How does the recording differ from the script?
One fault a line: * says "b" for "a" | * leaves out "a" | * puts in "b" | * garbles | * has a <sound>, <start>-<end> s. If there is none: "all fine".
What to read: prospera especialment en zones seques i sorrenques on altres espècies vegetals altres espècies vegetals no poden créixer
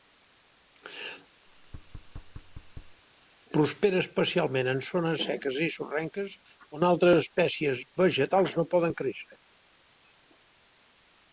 * has a thud, 1.5-3.0 s
* leaves out "altres espècies vegetals"